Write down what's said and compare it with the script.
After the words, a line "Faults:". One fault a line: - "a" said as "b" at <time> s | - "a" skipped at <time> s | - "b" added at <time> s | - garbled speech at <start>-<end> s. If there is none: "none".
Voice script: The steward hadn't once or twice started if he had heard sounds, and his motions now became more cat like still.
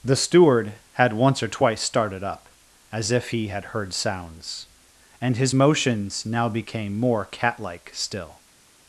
The steward had once or twice started up, as if he had heard sounds, and his motions now became more cat like still.
Faults:
- "hadn't" said as "had" at 0.9 s
- "up as" added at 2.2 s